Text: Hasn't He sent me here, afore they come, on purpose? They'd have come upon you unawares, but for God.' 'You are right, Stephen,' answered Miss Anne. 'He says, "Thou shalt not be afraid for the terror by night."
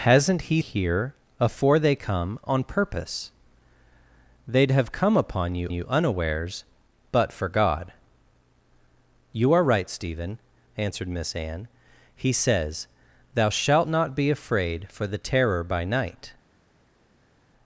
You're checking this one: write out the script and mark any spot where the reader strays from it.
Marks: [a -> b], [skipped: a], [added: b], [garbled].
Hasn't He [skipped: sent me] here, afore they come, on purpose? They'd have come upon you [added: you] unawares, but for God.' 'You are right, Stephen,' answered Miss Anne. 'He says, "Thou shalt not be afraid for the terror by night."